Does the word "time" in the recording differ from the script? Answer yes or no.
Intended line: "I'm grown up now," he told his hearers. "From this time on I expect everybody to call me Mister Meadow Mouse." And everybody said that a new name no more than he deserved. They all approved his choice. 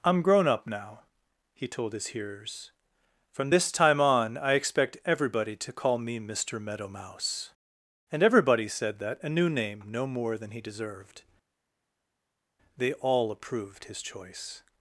no